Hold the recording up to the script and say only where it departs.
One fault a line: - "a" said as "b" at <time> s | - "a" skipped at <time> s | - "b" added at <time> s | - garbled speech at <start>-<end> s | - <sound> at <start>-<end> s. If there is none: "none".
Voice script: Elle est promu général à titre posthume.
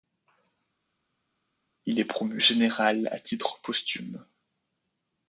- "Elle" said as "Il" at 1.8 s